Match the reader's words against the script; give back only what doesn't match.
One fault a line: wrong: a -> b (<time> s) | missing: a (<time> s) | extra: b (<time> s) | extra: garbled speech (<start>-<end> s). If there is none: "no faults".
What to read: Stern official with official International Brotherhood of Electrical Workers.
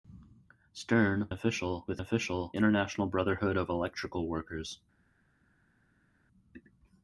no faults